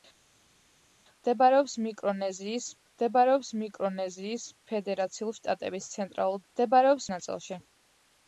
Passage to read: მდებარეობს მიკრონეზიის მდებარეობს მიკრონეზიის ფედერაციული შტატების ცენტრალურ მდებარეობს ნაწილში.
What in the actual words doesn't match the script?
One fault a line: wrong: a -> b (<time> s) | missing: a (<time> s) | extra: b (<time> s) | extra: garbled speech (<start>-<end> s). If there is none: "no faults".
no faults